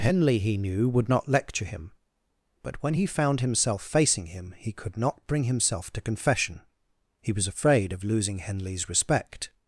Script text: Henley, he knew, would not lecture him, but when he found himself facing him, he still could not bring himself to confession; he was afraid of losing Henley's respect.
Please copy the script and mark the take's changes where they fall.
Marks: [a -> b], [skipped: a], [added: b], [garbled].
Henley, he knew, would not lecture him, but when he found himself facing him, he [skipped: still] could not bring himself to confession; he was afraid of losing Henley's respect.